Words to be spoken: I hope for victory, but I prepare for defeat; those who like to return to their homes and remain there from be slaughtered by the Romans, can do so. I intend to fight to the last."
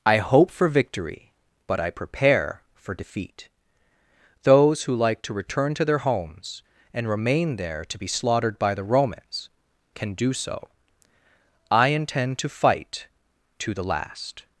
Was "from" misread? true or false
true